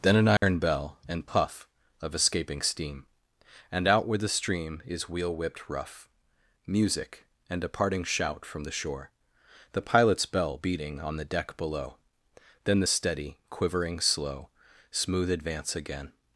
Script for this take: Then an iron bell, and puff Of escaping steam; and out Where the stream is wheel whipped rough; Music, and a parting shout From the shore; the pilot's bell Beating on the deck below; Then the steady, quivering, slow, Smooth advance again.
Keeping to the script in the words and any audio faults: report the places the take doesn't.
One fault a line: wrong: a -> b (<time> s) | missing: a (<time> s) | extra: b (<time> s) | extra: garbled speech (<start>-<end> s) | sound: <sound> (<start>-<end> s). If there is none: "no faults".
sound: dropout (0.4-0.4 s)